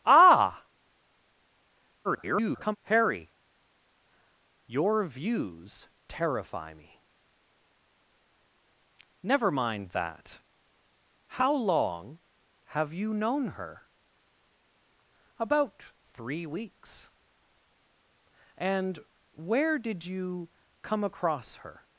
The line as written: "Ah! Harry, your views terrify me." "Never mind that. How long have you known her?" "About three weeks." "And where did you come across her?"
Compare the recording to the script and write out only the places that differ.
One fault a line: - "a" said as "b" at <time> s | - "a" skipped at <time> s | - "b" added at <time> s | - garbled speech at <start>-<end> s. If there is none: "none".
- garbled speech at 2.0-2.8 s